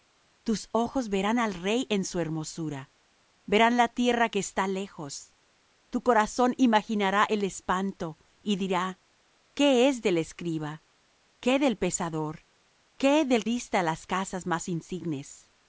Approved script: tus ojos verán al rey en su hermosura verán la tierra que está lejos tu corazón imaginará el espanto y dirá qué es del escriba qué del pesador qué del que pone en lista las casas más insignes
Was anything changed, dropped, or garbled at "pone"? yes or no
yes